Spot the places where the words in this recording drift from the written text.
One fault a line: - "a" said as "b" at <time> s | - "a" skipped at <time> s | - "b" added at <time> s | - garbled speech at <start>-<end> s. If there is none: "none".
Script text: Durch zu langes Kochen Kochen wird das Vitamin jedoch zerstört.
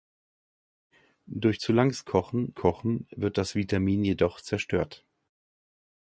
none